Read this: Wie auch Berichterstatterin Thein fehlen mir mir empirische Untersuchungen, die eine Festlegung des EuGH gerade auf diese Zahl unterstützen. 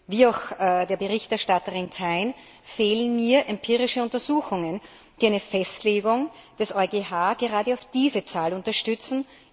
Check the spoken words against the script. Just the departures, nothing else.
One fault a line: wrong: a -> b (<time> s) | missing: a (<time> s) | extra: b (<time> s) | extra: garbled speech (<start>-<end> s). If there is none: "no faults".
extra: der (0.6 s)
missing: mir (3.5 s)